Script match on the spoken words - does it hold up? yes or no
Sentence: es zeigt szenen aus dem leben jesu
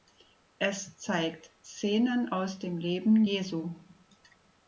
yes